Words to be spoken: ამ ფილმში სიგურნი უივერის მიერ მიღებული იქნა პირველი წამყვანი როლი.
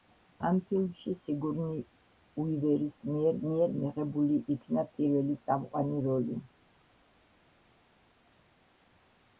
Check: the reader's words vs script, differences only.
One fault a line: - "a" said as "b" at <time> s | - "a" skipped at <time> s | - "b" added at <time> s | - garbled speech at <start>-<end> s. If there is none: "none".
- "მიერ" added at 3.5 s